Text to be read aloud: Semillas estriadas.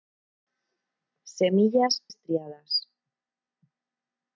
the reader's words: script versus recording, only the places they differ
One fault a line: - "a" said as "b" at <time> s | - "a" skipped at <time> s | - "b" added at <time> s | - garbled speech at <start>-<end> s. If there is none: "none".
none